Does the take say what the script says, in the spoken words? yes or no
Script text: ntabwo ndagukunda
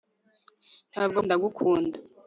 yes